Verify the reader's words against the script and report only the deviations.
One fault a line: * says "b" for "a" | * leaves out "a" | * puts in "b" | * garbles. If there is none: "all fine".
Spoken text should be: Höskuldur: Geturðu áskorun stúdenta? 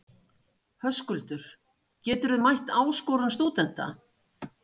* puts in "mætt"